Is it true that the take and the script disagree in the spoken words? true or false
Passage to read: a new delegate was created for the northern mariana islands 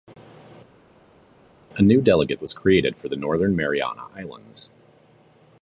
false